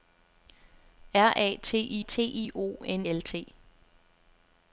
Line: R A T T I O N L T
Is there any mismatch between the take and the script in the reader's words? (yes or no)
no